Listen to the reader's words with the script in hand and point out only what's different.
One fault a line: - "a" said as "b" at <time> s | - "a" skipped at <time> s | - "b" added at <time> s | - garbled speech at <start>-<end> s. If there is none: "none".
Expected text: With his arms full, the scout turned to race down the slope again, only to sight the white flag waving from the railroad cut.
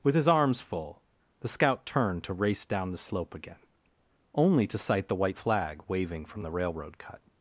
none